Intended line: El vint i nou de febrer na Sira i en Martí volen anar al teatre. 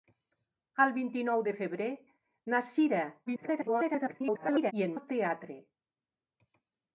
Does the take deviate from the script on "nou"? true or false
false